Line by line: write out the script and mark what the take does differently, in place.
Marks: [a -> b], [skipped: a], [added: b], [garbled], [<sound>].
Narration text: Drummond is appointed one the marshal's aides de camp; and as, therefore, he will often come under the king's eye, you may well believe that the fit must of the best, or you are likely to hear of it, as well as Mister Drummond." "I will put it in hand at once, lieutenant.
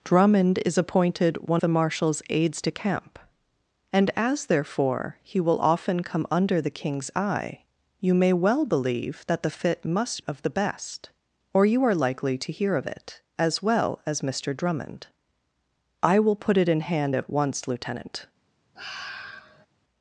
Drummond is appointed one the marshal's aides de camp; and as, therefore, he will often come under the king's eye, you may well believe that the fit must of the best, or you are likely to hear of it, as well as Mister Drummond." "I will put it in hand at once, lieutenant. [sigh]